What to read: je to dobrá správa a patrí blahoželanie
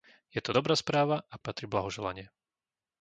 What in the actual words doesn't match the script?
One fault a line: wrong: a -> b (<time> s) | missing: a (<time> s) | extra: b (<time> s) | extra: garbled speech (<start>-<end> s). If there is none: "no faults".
no faults